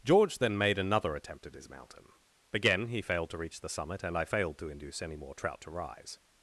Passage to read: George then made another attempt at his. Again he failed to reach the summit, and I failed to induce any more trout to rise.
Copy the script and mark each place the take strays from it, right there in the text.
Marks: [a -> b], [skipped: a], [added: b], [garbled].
George then made another attempt at his. [added: mountain] Again he failed to reach the summit, and I failed to induce any more trout to rise.